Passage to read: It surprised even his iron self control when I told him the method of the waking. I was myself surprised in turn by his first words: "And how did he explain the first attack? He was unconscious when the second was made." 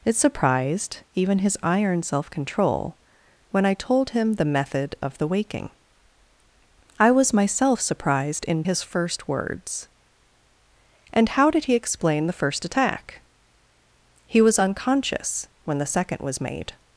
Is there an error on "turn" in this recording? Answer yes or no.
yes